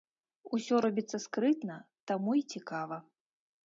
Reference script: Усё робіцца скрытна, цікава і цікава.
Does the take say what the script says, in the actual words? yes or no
no